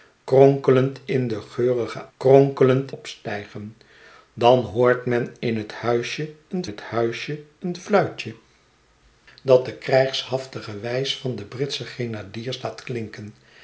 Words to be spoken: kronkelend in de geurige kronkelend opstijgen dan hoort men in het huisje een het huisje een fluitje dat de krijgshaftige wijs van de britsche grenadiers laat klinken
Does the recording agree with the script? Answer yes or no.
yes